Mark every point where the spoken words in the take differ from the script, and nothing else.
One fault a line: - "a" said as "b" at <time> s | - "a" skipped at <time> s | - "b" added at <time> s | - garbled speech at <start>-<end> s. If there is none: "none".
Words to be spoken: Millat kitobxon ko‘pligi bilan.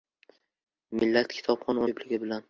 none